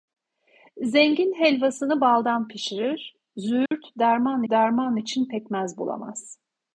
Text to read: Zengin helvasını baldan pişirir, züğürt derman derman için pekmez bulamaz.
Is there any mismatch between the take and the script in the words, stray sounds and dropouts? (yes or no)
yes